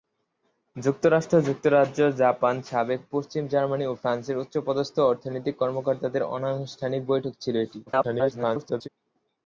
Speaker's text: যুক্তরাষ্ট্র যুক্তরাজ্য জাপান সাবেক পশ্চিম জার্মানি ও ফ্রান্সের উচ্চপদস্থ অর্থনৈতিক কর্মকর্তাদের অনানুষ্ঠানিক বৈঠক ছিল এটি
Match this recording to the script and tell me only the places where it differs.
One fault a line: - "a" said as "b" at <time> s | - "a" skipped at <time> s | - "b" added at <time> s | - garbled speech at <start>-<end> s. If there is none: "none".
- garbled speech at 7.9-8.9 s